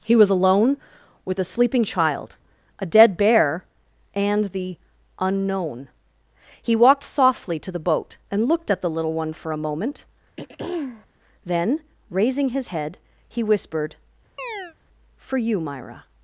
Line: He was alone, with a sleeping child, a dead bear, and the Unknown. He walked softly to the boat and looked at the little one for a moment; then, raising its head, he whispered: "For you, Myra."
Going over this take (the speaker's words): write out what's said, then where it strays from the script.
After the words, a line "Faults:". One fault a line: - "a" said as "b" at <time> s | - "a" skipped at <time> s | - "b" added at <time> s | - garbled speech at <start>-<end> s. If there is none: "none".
He was alone, with a sleeping child, a dead bear, and the Unknown. He walked softly to the boat and looked at the little one for a moment; then, raising his head, he whispered: "For you, Myra."
Faults:
- "its" said as "his" at 12.5 s